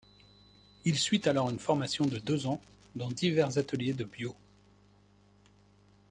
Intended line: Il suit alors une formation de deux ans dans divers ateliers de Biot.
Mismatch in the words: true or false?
false